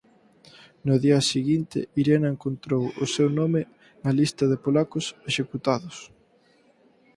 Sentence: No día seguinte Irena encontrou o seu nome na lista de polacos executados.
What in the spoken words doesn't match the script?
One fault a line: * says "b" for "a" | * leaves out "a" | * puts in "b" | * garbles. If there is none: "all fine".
all fine